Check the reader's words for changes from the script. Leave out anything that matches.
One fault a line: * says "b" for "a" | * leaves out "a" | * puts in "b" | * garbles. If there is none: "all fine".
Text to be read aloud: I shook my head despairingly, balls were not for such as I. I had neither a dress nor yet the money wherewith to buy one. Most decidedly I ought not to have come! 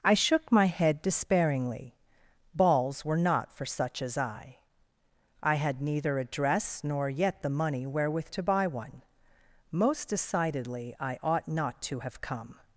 all fine